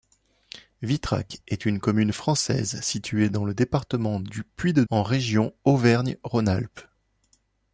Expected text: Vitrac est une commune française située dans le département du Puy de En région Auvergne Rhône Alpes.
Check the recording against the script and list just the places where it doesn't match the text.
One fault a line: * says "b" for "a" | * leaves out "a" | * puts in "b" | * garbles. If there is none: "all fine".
all fine